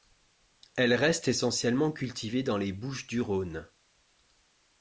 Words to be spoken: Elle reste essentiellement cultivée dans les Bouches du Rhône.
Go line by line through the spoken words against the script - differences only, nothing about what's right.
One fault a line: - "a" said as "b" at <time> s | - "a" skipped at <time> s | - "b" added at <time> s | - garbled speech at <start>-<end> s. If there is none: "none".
none